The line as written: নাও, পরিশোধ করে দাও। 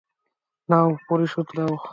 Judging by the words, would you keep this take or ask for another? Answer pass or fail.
fail